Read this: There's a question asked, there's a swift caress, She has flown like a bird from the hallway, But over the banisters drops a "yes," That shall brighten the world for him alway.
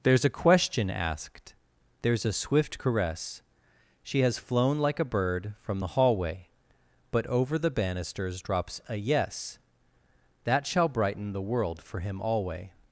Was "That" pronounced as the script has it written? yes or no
yes